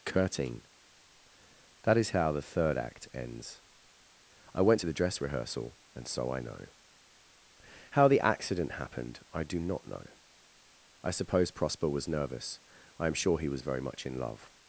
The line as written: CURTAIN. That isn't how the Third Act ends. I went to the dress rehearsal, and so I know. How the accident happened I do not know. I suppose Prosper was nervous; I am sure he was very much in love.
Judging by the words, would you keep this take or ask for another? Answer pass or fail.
fail